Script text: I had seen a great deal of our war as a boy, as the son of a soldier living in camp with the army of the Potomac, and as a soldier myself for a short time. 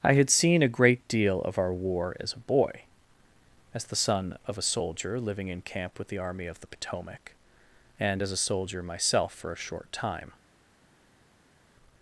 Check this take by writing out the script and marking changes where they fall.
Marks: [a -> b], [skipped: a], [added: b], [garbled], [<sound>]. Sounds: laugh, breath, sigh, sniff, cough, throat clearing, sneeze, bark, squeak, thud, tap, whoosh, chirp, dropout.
I had seen a great deal of our war as a boy, as the son of a soldier living in camp with the army of the Potomac, and as a soldier myself for a short time.